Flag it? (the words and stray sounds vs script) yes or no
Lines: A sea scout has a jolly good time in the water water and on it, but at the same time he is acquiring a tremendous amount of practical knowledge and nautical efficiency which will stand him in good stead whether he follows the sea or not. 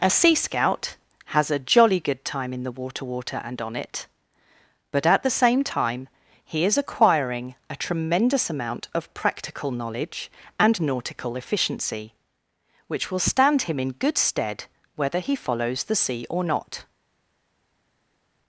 no